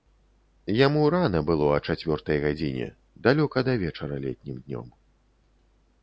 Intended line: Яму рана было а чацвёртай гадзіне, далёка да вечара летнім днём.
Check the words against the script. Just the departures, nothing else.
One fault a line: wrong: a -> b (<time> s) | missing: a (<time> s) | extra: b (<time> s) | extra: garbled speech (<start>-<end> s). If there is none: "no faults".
no faults